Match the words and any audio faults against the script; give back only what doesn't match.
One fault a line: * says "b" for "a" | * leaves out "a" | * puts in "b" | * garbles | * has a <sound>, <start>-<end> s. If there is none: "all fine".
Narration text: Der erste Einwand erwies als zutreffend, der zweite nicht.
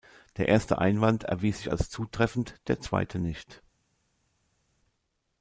* puts in "sich"